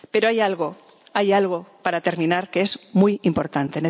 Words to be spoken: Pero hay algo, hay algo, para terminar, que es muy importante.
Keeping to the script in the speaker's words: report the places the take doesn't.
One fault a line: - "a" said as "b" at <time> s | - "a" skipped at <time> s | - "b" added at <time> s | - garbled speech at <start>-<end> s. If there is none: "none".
none